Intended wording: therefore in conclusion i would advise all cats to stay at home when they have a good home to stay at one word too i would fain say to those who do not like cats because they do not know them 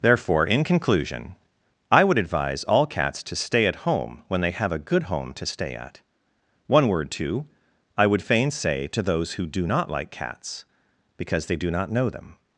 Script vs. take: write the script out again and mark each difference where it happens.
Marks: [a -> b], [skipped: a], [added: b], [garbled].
therefore in conclusion i would advise all cats to stay at home when they have a good home to stay at one word too i would fain say to those who do not like cats because they do not know them